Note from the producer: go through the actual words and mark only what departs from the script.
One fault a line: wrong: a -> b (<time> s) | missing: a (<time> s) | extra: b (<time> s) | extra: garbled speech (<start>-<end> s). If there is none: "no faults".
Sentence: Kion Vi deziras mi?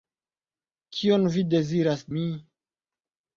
no faults